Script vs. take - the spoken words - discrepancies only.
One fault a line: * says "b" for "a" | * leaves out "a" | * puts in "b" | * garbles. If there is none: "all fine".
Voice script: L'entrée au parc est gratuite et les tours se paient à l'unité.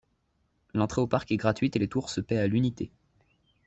all fine